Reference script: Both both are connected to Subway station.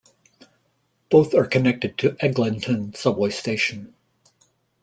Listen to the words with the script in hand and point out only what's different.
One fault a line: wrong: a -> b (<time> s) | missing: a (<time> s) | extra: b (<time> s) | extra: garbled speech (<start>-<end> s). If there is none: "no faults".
missing: both (1.4 s)
extra: Eglinton (2.2 s)